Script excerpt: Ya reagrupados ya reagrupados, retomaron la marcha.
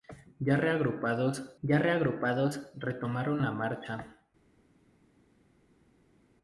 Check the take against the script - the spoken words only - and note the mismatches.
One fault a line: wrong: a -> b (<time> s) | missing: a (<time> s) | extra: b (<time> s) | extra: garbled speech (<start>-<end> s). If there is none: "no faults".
no faults